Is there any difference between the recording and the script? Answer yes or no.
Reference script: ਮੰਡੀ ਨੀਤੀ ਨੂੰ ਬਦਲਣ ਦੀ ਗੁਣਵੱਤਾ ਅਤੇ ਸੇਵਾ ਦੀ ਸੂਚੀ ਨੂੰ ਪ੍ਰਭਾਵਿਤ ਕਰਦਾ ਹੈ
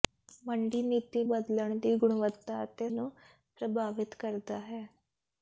yes